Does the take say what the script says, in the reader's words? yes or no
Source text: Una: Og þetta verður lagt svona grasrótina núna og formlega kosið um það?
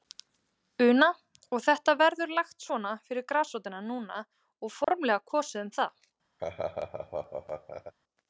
no